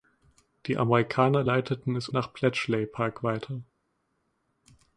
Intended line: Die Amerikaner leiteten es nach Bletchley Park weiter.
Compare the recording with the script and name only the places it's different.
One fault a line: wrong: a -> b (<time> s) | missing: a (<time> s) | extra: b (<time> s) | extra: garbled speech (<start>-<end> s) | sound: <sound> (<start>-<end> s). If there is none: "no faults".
no faults